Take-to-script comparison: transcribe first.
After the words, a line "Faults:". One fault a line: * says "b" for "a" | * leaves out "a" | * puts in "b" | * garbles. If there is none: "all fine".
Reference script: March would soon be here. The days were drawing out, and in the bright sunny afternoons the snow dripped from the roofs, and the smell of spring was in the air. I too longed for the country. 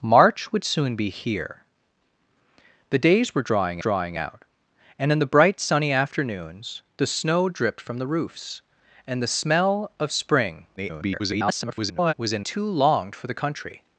March would soon be here. The days were drawing drawing out, and in the bright sunny afternoons the snow dripped from the roofs, and the smell of spring [garbled] was in too longed for the country.
Faults:
* puts in "drawing"
* garbles
* leaves out "the air I"